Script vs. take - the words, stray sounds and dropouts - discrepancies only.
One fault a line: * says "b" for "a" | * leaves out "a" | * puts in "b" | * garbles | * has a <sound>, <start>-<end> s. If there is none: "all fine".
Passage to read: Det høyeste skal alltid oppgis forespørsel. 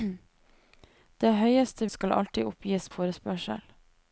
all fine